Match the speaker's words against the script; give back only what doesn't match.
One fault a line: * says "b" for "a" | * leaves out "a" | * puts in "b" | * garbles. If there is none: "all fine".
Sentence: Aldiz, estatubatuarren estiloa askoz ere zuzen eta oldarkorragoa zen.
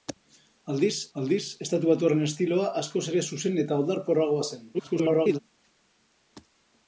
* puts in "aldiz"
* garbles